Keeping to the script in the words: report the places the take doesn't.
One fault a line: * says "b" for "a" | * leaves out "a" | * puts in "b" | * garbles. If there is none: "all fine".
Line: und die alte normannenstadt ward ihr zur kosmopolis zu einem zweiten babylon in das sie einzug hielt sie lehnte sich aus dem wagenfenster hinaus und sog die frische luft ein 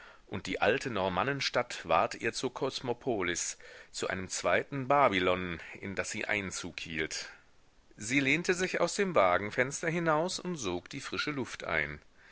all fine